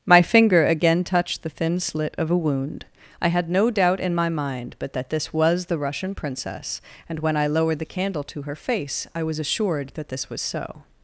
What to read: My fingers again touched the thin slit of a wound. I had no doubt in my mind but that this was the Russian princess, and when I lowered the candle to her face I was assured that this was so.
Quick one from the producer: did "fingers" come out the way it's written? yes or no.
no